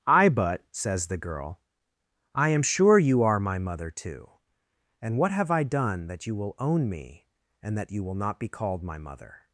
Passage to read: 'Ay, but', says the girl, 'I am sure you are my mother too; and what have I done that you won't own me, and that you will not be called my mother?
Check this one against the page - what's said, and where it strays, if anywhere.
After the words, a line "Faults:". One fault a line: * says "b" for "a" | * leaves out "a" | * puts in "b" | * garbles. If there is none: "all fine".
'Ay, but', says the girl, 'I am sure you are my mother too; and what have I done that you will own me, and that you will not be called my mother?
Faults:
* says "will" for "won't"